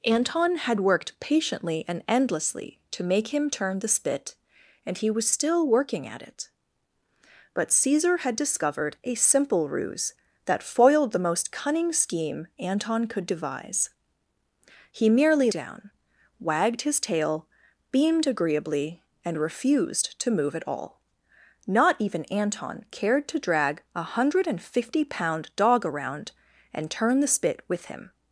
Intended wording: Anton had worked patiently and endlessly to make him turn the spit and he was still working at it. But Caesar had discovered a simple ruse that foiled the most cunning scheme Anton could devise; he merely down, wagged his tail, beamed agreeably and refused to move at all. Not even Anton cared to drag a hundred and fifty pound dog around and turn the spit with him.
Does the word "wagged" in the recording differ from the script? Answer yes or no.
no